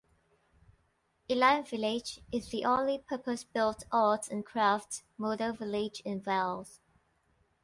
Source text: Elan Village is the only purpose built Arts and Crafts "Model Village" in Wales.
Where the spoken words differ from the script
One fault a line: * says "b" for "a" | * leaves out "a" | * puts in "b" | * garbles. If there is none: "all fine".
all fine